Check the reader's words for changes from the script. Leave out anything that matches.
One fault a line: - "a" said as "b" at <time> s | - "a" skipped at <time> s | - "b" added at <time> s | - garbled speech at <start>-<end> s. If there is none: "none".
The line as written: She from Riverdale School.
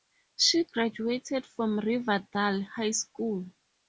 - "graduated" added at 0.6 s
- "High" added at 2.6 s